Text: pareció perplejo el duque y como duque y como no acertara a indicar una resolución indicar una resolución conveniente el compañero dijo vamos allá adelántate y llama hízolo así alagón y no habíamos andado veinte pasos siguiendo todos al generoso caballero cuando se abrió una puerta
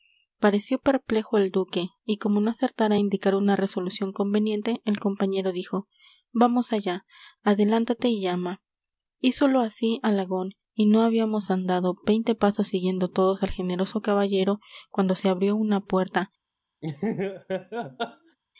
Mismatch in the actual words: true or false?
true